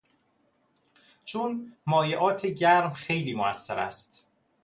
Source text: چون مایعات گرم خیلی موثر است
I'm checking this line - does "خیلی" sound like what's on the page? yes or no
yes